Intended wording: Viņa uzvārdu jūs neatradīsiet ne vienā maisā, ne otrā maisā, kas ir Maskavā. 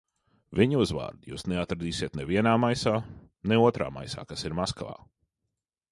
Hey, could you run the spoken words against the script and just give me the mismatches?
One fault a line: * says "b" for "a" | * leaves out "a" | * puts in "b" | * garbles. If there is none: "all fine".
all fine